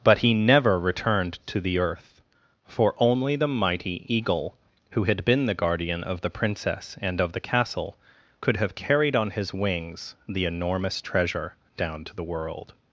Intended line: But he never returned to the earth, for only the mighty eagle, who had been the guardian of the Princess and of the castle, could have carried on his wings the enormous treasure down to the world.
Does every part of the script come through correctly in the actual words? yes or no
yes